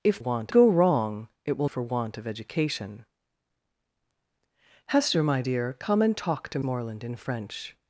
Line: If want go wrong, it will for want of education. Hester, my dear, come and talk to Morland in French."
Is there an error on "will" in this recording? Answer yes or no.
no